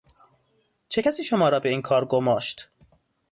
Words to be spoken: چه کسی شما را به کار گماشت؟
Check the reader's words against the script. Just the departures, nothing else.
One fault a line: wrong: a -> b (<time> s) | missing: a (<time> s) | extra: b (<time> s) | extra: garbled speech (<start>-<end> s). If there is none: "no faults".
extra: این (1.7 s)